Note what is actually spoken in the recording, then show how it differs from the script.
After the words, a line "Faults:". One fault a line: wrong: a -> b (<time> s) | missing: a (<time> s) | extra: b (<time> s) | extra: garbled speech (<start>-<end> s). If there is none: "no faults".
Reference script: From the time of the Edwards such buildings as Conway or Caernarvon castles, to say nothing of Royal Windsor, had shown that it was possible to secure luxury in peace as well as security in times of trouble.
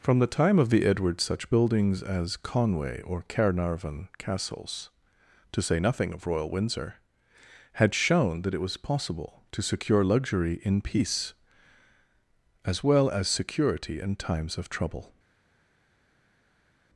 From the time of the Edwards such buildings as Conway or Caernarvon castles, to say nothing of Royal Windsor, had shown that it was possible to secure luxury in peace as well as security in times of trouble.
Faults:
no faults